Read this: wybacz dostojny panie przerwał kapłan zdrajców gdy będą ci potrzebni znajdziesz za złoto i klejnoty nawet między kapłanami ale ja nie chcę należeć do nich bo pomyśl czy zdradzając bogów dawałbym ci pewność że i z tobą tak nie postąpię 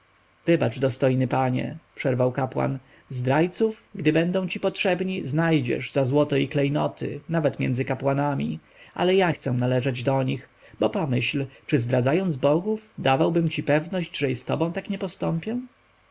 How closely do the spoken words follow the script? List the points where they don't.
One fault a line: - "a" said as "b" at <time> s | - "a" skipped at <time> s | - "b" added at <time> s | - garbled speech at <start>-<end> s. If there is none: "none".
- "nie" skipped at 9.3 s